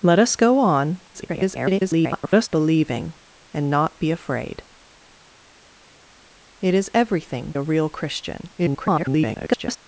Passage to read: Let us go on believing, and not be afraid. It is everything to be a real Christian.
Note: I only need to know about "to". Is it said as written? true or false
false